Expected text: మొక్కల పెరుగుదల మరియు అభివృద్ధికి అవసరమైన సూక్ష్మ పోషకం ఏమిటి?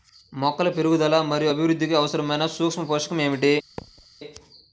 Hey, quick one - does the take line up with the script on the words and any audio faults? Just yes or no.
no